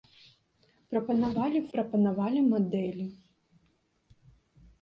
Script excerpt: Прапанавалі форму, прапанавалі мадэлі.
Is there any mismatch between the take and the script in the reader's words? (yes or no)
yes